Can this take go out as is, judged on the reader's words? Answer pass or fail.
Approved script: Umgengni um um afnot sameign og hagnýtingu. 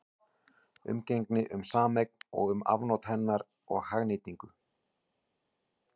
fail